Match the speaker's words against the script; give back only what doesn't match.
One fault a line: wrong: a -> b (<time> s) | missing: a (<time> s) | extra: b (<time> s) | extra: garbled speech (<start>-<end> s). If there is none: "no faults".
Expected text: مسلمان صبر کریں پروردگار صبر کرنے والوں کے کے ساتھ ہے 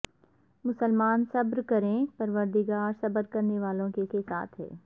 no faults